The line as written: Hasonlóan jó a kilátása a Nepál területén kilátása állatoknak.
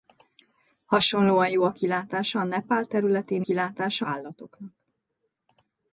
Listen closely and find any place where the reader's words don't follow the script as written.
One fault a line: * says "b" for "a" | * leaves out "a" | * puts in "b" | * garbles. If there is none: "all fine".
all fine